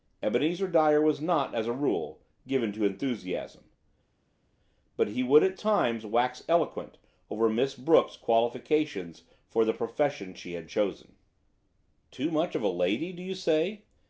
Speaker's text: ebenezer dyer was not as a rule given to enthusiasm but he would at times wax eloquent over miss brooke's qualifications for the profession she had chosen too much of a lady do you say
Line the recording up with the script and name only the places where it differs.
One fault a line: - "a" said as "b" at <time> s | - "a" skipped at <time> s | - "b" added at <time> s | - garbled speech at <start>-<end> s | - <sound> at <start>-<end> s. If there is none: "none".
none